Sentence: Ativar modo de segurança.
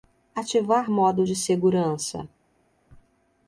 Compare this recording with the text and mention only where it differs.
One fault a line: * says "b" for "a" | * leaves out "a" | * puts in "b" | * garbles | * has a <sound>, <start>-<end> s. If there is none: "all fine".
all fine